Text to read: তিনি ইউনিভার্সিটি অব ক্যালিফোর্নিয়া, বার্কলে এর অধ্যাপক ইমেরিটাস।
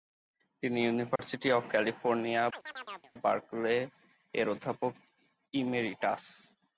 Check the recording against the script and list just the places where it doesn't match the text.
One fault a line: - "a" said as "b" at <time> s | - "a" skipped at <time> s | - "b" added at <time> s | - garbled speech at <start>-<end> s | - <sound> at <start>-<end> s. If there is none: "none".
- dropout at 1.2-1.2 s
- chirp at 2.5-3.1 s